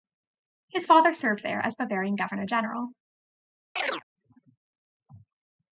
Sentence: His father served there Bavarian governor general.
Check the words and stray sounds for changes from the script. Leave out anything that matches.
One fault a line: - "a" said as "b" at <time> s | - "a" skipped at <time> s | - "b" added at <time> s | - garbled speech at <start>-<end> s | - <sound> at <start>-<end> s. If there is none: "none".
- "as" added at 1.6 s
- chirp at 3.8-4.0 s